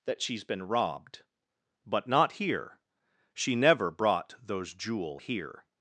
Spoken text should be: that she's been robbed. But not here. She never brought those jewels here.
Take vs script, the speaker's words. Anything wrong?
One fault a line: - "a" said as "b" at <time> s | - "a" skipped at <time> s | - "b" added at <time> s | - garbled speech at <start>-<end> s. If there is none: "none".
- "jewels" said as "jewel" at 4.7 s